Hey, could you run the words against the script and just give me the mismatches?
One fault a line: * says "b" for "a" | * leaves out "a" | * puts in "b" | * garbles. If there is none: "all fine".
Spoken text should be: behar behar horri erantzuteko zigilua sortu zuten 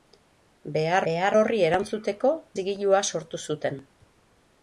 all fine